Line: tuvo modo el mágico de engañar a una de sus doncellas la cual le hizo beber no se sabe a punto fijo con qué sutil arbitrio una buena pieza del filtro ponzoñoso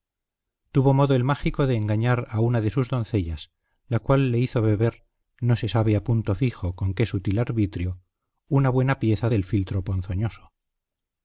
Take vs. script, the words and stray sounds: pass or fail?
pass